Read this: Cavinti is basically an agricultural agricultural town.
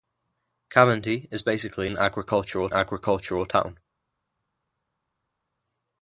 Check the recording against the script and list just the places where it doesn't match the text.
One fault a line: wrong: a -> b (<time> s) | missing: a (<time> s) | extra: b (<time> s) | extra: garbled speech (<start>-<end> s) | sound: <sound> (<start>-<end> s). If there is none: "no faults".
no faults